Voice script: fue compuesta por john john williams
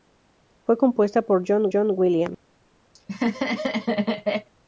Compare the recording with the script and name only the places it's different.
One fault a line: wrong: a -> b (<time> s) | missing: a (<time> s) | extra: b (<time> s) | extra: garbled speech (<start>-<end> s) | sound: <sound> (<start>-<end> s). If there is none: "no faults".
sound: laugh (2.9-4.5 s)